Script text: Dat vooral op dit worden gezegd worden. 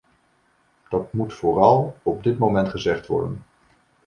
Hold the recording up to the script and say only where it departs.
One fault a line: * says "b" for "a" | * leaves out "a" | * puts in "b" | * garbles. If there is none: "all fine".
* puts in "moet"
* says "moment" for "worden"